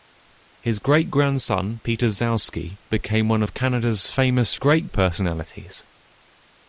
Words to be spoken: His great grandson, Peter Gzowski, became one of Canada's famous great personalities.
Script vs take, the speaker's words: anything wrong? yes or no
no